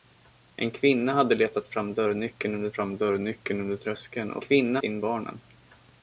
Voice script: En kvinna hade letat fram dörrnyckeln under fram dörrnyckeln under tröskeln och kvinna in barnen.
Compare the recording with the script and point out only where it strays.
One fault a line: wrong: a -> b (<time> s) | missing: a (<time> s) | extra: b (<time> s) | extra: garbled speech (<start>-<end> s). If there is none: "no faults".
no faults